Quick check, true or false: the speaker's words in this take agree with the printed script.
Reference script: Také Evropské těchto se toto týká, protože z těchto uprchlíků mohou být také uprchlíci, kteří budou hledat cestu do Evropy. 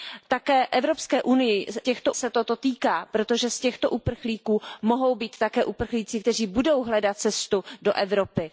true